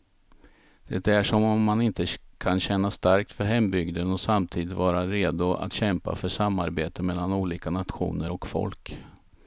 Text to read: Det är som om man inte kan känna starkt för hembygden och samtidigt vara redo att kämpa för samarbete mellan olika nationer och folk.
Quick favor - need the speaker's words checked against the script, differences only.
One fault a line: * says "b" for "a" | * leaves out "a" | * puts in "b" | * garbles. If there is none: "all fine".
all fine